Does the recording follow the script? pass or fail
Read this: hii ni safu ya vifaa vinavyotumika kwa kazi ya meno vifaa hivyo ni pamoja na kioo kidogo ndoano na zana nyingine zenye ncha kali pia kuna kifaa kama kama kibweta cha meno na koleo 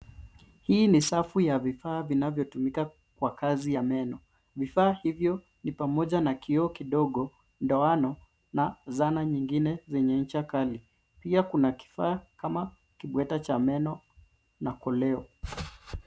fail